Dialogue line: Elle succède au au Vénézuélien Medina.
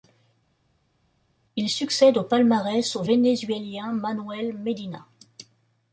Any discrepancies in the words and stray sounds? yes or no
yes